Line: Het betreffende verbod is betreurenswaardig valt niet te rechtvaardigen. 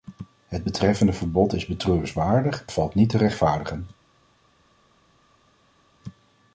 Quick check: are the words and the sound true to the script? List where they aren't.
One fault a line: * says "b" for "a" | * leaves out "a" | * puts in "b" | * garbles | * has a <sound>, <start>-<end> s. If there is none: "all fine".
all fine